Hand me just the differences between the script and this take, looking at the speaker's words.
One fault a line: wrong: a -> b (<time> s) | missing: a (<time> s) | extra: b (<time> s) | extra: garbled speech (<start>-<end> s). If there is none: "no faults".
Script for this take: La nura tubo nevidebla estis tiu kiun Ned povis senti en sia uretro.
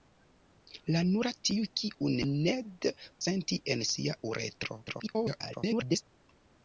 missing: tubo nevidebla estis (1.3 s)
missing: povis (2.9 s)
extra: garbled speech (4.9-6.0 s)